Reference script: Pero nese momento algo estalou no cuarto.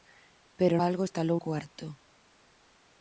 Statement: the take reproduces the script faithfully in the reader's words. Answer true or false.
false